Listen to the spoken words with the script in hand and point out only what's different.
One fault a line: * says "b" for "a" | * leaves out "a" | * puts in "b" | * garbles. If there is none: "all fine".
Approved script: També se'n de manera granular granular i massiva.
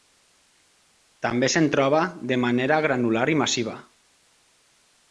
* puts in "troba"
* leaves out "granular"